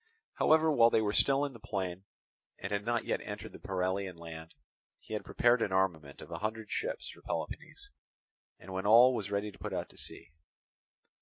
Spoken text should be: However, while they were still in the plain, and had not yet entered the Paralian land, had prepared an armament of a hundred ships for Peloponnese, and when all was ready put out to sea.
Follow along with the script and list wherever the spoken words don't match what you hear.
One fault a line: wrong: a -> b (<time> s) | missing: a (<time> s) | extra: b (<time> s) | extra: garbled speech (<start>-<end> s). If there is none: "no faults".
extra: he (5.0 s)